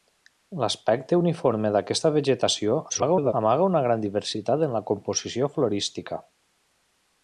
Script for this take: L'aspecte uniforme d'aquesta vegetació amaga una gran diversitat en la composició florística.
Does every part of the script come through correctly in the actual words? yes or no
no